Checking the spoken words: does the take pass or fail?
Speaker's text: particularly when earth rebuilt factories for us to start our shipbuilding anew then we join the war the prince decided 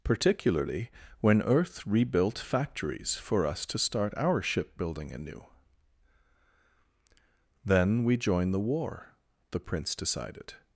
pass